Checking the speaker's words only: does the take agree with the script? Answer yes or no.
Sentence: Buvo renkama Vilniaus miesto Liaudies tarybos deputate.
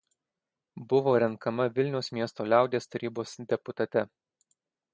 yes